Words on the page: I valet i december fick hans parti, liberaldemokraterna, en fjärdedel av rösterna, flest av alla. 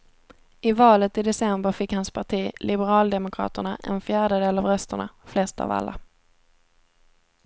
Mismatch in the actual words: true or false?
false